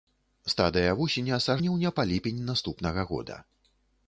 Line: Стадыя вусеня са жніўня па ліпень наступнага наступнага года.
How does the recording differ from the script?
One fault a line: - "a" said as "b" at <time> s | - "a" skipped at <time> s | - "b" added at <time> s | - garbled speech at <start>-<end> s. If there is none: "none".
- "наступнага" skipped at 3.0 s